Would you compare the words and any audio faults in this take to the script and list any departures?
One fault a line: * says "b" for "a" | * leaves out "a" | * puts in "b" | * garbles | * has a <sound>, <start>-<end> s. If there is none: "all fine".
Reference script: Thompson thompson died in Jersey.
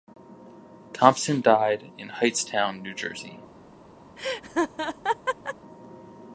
* leaves out "thompson"
* puts in "Hightstown New"
* has a laugh, 4.2-5.6 s